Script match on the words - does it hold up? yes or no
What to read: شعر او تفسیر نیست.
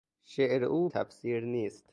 yes